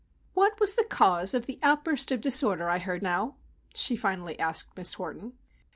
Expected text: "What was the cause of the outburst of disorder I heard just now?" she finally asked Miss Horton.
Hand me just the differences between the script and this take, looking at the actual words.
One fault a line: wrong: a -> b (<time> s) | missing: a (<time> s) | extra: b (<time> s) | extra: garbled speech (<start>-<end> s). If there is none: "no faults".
missing: just (3.0 s)